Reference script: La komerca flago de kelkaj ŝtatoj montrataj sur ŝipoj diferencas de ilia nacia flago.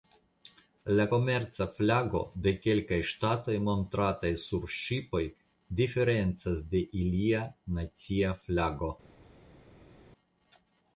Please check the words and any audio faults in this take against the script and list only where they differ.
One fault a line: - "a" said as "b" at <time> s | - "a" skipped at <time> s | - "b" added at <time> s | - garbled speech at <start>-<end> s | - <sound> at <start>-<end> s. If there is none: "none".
none